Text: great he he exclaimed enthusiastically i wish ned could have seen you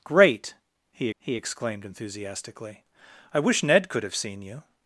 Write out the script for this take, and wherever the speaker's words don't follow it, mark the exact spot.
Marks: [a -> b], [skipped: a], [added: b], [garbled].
great he he exclaimed enthusiastically i wish ned could have seen you